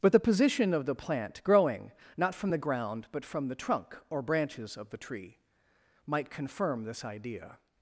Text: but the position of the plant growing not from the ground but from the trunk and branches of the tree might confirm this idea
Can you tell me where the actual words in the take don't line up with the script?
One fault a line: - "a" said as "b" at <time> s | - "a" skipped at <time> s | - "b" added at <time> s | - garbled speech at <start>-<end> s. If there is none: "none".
- "and" said as "or" at 4.1 s